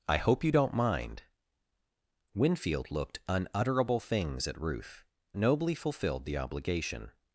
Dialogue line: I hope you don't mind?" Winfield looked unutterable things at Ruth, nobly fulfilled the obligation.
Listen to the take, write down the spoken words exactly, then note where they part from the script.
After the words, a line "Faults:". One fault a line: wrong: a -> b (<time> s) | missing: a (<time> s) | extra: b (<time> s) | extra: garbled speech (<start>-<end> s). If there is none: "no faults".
I hope you don't mind?" Winfield looked unutterable things at Ruth, nobly fulfilled the obligation.
Faults:
no faults